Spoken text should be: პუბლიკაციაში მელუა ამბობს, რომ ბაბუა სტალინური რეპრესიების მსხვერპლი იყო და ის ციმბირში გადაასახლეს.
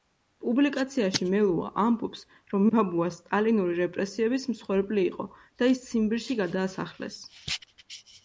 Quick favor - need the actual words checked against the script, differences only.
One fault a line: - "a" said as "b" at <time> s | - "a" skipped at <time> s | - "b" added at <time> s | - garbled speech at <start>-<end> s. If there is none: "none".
none